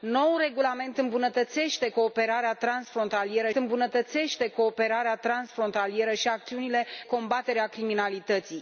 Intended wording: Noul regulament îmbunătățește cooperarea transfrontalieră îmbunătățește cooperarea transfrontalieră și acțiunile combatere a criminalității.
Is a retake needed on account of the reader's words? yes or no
no